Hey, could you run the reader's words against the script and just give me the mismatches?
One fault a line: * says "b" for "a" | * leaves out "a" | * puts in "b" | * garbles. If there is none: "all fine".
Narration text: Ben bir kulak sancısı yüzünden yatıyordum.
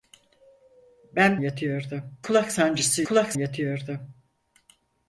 * says "yatıyordum" for "bir"
* says "kulak" for "yüzünden"